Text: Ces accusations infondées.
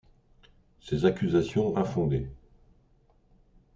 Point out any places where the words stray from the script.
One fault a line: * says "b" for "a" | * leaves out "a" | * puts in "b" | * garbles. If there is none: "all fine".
all fine